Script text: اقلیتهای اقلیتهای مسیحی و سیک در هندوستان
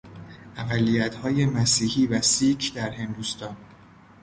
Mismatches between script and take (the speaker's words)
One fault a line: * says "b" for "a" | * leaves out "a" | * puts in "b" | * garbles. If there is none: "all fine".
* leaves out "اقلیتهای"